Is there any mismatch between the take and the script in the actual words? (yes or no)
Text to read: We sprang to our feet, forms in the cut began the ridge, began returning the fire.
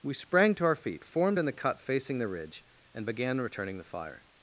yes